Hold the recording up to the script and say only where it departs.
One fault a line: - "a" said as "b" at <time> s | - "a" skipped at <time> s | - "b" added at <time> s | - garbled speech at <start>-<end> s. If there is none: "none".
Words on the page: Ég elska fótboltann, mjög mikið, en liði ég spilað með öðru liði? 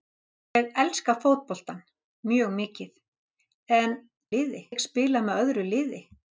none